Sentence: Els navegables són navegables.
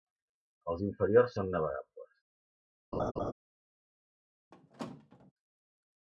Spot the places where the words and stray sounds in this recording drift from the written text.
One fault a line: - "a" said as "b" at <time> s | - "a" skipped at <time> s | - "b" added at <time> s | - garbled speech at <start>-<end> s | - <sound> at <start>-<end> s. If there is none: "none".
- "navegables" said as "inferiors" at 0.9 s
- laugh at 2.9-3.3 s
- squeak at 4.5-5.3 s